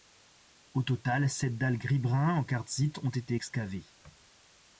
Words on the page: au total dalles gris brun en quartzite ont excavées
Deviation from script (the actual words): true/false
true